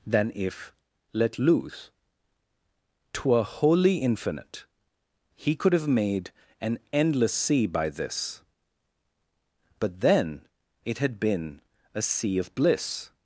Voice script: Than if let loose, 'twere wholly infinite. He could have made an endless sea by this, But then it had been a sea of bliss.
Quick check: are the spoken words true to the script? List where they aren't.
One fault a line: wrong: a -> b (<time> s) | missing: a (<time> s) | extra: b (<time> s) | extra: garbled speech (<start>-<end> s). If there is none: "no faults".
no faults